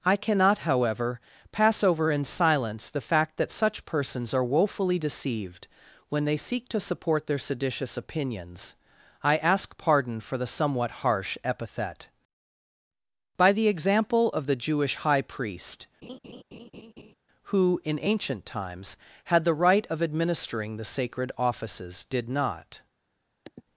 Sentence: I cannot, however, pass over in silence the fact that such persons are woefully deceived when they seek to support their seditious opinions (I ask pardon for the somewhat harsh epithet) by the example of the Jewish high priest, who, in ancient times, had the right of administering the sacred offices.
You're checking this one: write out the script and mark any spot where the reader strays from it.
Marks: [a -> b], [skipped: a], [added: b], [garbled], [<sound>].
I cannot, however, pass over in silence the fact that such persons are woefully deceived when they seek to support their seditious opinions (I ask pardon for the somewhat harsh epithet) by the example of the Jewish high priest, [laugh] who, in ancient times, had the right of administering the sacred offices. [added: Did not] [sniff]